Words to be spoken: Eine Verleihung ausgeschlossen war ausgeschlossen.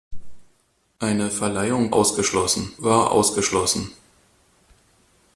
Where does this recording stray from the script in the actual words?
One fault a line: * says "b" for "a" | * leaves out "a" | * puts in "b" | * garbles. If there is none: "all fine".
all fine